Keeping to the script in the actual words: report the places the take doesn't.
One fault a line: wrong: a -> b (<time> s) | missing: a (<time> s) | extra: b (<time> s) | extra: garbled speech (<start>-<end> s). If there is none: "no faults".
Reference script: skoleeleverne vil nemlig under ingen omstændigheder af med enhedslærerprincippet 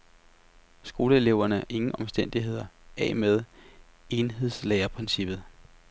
missing: vil nemlig under (1.6 s)